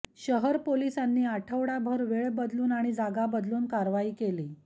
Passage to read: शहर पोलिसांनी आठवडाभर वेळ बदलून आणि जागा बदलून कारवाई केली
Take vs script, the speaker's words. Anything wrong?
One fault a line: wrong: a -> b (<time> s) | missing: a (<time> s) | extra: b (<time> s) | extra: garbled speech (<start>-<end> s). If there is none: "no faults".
no faults